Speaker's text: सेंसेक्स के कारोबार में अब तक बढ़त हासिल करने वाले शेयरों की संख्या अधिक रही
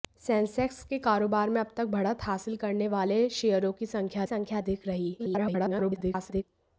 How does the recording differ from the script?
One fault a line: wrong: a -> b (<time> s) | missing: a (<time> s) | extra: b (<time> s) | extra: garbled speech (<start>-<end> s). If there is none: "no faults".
extra: संख्या (4.2 s)
extra: garbled speech (5.2-6.4 s)